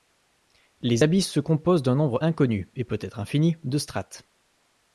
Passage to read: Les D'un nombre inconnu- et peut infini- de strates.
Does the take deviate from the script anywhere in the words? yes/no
yes